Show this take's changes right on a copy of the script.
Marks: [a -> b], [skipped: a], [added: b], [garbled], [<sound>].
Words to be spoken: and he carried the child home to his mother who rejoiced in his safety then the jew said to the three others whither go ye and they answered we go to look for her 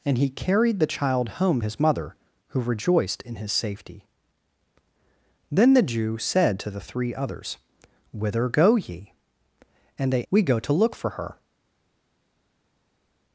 and he carried the child home [skipped: to] his mother who rejoiced in his safety then the jew said to the three others whither go ye and they [skipped: answered] we go to look for her